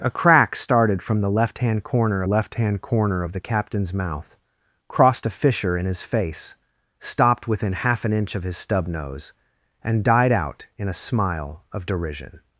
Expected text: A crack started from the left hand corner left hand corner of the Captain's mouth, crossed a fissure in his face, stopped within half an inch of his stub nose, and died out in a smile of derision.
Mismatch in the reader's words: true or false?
false